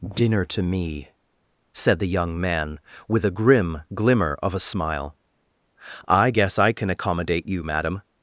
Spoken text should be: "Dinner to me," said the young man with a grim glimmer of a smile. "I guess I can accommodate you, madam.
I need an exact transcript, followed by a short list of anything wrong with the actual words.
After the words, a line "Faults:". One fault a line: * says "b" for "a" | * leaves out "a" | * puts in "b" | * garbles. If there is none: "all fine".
"Dinner to me," said the young man with a grim glimmer of a smile. "I guess I can accommodate you, madam.
Faults:
all fine